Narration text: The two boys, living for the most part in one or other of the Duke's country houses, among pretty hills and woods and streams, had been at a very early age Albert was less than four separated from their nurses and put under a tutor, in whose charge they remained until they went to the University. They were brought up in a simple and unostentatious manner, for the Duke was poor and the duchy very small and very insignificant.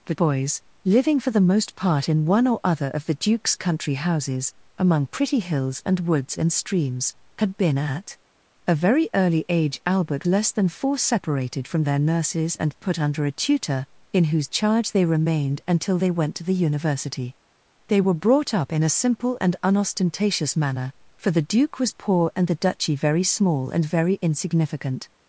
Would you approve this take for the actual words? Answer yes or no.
no